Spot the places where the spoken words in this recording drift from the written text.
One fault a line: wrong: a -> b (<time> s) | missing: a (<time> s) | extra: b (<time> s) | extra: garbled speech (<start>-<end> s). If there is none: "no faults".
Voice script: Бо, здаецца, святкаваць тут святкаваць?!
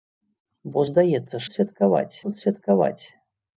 no faults